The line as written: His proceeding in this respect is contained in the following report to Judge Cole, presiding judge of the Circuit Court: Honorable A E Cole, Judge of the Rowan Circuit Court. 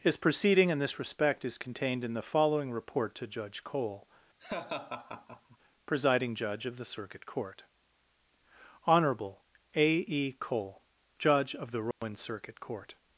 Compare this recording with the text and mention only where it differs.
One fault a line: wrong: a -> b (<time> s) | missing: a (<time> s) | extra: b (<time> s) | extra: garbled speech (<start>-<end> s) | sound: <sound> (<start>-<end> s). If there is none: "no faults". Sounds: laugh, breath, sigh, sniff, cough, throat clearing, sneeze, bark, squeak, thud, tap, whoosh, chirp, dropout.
sound: laugh (4.4-5.6 s)
sound: dropout (11.9-12.0 s)